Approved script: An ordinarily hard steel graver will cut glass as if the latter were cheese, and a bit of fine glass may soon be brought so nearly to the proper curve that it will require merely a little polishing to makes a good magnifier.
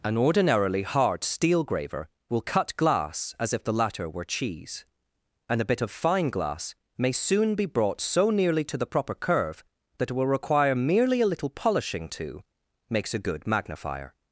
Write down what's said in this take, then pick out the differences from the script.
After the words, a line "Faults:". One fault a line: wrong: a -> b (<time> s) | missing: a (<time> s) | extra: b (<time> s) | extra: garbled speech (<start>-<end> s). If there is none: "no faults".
An ordinarily hard steel graver will cut glass as if the latter were cheese, and a bit of fine glass may soon be brought so nearly to the proper curve that it will require merely a little polishing to makes a good magnifier.
Faults:
no faults